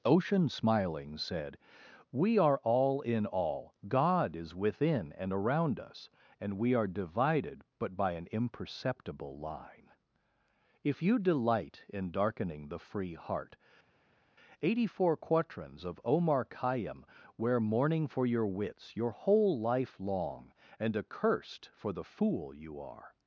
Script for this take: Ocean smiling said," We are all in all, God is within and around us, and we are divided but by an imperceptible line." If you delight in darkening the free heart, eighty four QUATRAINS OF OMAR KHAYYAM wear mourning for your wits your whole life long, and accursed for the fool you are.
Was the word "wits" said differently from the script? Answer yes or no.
no